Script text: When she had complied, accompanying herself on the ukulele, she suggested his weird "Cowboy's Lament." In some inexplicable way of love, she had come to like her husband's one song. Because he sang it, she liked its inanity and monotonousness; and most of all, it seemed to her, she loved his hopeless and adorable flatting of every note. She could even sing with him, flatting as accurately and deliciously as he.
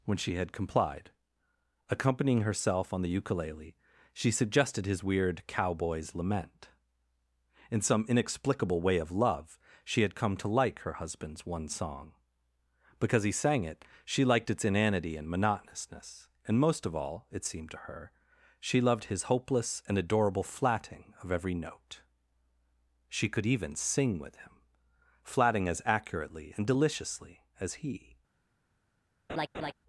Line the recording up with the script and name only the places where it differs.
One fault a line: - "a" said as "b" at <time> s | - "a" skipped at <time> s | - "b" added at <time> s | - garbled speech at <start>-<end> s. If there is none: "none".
none